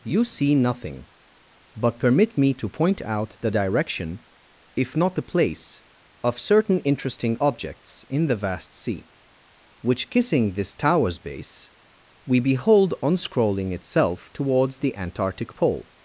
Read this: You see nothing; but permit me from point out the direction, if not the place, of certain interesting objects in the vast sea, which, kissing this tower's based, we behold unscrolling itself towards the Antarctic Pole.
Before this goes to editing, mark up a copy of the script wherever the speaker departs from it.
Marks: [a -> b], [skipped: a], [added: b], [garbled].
You see nothing; but permit me [from -> to] point out the direction, if not the place, of certain interesting objects in the vast sea, which, kissing this tower's [based, -> base] we behold unscrolling itself towards the Antarctic Pole.